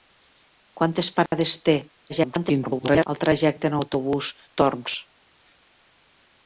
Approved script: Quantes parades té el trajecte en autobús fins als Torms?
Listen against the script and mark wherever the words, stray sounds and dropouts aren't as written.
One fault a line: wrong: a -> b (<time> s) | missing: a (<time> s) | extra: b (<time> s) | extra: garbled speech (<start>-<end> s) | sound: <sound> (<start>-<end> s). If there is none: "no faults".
sound: dropout (1.3-1.3 s)
extra: garbled speech (2.1-3.1 s)
missing: fins als (4.3 s)